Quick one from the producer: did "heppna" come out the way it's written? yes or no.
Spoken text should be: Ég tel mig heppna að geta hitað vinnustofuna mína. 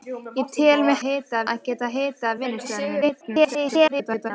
no